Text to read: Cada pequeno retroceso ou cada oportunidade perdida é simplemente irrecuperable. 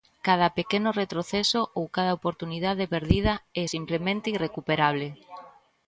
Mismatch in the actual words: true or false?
false